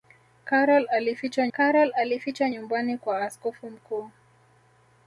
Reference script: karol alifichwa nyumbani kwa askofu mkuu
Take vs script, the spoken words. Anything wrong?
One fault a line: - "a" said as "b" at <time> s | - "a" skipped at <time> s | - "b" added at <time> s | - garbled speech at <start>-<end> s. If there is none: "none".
- "karol alifichwa" added at 1.5 s